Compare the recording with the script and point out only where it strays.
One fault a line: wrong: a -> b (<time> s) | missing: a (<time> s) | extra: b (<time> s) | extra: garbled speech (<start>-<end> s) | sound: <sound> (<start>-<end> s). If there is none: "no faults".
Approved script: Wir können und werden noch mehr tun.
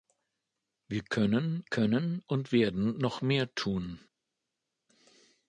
extra: können (1.6 s)